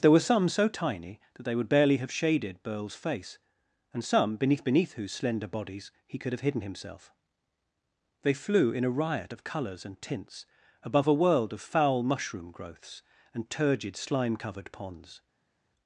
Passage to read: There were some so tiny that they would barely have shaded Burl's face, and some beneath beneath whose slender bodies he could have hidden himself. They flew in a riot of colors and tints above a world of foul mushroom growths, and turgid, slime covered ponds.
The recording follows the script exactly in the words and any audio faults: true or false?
true